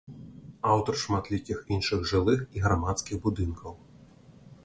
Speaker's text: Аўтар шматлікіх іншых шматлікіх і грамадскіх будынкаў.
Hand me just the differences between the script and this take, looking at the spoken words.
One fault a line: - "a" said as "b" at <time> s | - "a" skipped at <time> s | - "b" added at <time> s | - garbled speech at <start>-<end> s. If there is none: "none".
- "шматлікіх" said as "жылых" at 2.1 s